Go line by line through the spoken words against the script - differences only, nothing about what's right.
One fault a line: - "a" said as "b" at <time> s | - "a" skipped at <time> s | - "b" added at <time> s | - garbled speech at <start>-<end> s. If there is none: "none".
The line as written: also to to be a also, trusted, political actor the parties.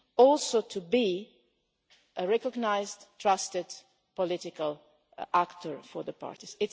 - "to" skipped at 0.8 s
- "also" said as "recognised" at 2.3 s
- "for" added at 5.8 s